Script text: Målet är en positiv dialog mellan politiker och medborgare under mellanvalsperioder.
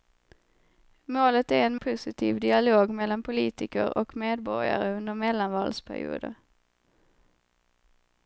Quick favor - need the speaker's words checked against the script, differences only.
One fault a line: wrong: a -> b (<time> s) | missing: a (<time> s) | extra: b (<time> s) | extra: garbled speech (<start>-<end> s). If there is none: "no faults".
no faults